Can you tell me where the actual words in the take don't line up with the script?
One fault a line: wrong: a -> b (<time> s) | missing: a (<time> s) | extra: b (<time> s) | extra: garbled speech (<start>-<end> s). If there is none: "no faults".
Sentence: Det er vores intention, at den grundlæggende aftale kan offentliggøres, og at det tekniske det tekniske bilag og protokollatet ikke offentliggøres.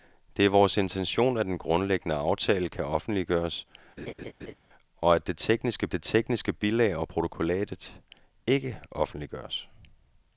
no faults